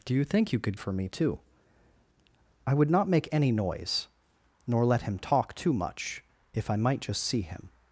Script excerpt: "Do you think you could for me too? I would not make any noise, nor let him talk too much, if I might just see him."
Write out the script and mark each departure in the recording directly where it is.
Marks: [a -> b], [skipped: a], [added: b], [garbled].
"Do you think you could for me too? I would not make any noise, nor let him talk too much, if I might just see him."